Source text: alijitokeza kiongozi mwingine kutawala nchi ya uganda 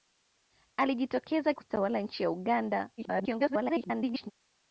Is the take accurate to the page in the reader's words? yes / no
no